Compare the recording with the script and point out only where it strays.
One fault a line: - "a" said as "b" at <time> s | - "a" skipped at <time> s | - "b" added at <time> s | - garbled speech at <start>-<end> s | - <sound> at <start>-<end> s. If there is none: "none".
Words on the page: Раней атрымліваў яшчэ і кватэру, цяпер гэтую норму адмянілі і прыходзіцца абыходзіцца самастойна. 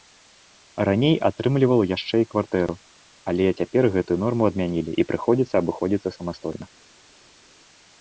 - "але" added at 3.3 s